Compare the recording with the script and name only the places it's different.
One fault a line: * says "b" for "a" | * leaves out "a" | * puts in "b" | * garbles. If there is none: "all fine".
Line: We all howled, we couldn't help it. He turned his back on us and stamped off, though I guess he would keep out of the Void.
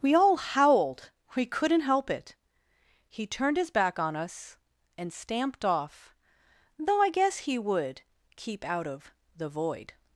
all fine